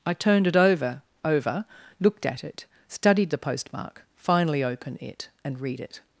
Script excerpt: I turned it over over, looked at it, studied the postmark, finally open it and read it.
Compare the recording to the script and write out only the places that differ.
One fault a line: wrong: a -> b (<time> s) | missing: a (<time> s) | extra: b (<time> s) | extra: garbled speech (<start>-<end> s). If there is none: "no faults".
no faults